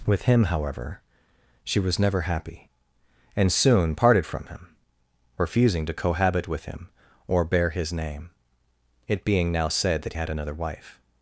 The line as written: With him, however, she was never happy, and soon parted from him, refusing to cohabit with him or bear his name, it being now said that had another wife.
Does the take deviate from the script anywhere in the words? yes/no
no